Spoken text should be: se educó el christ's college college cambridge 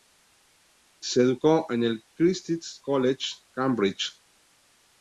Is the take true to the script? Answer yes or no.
no